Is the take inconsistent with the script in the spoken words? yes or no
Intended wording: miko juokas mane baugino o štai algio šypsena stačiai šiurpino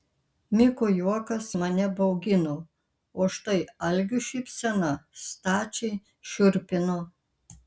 no